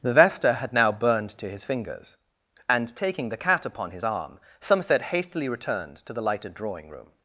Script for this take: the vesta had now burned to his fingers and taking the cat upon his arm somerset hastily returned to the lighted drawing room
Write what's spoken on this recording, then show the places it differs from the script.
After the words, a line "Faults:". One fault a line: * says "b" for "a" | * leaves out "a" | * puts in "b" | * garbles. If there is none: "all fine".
the vesta had now burned to his fingers and taking the cat upon his arm somerset hastily returned to the lighted drawing room
Faults:
all fine